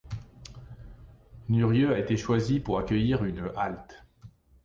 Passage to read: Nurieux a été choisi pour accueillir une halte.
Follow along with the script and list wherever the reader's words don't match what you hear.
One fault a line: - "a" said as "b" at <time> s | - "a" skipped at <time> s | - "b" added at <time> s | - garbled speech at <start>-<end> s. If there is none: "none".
none